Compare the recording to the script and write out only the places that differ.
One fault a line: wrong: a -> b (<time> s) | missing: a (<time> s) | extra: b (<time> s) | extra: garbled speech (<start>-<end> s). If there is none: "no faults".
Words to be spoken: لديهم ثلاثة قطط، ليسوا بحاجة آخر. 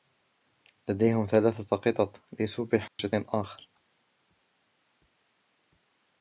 no faults